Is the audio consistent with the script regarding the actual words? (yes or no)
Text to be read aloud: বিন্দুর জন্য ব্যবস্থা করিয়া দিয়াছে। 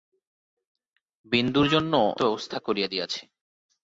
yes